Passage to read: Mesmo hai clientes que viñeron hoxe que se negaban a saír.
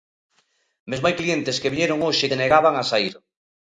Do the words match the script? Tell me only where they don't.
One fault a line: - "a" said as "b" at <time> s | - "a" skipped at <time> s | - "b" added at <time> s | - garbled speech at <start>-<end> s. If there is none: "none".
- "que" skipped at 2.3 s